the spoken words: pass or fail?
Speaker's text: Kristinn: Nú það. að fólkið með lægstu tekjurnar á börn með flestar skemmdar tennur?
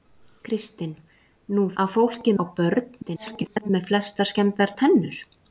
fail